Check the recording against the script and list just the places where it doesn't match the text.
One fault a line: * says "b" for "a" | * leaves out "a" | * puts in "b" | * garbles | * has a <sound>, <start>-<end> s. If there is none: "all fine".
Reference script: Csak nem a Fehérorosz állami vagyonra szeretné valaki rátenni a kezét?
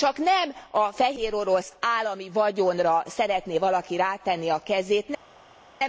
all fine